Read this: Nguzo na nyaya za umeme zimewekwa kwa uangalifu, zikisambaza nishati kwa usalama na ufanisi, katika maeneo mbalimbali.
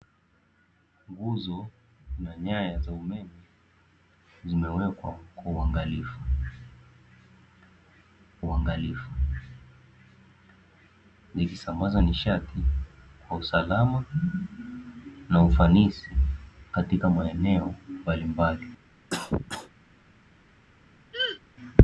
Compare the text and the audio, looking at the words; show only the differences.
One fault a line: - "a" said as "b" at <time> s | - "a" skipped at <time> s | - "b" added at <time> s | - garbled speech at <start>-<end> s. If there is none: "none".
- "uangalifu" added at 8.4 s